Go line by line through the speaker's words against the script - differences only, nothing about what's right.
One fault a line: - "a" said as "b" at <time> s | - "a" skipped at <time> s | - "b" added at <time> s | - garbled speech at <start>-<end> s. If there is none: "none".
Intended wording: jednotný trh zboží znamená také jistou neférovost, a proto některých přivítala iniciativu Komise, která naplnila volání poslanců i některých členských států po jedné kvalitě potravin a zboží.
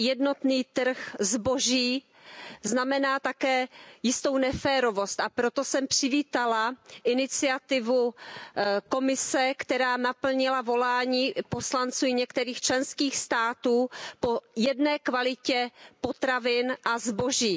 - "některých" said as "jsem" at 5.6 s